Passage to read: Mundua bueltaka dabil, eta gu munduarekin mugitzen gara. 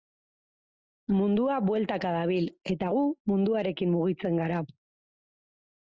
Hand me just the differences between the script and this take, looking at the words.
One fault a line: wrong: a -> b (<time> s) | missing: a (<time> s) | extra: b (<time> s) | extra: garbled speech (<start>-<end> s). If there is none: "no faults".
no faults